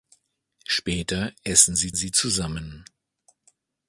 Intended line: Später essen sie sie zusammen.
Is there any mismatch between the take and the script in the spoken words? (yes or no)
no